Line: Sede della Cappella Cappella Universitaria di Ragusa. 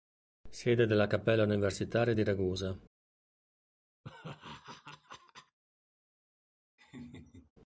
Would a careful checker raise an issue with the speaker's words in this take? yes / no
yes